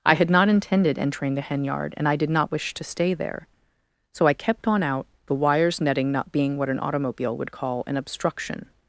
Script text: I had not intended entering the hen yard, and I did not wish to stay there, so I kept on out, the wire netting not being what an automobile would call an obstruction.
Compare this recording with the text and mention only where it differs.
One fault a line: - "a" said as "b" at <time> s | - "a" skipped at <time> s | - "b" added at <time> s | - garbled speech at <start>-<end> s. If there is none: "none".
- "wire" said as "wires" at 5.3 s